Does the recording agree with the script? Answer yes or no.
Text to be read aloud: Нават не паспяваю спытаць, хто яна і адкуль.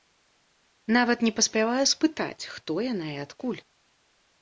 yes